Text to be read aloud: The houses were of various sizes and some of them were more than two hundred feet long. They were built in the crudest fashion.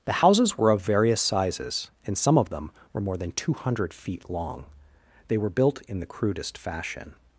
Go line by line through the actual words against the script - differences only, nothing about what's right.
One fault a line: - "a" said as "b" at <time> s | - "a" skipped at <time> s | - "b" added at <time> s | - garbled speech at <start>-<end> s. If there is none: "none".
none